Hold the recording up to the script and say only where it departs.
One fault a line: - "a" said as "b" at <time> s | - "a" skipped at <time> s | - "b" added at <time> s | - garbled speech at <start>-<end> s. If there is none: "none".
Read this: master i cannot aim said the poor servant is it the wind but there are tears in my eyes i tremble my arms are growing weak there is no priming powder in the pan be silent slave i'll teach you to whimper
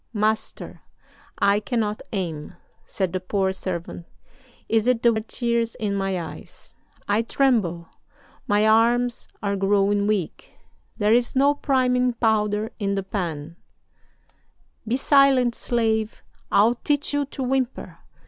- "wind but there" skipped at 5.1 s